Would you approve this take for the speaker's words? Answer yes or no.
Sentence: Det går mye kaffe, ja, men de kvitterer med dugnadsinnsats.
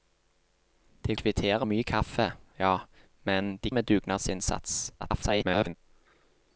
no